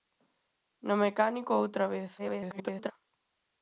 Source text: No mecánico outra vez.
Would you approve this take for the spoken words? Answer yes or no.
no